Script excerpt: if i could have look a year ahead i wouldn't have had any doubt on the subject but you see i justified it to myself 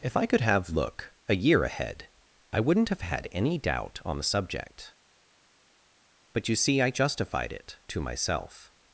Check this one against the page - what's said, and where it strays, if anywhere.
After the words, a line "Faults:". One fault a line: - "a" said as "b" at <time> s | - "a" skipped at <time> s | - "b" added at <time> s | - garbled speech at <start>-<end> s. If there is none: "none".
if i could have look a year ahead i wouldn't have had any doubt on the subject but you see i justified it to myself
Faults:
none